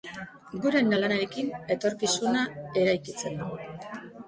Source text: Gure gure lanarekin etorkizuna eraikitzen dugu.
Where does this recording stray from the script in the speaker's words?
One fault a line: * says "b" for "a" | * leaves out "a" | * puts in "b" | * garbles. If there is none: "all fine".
* leaves out "gure"